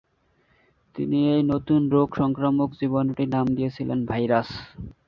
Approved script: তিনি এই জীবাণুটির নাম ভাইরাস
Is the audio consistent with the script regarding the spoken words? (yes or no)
no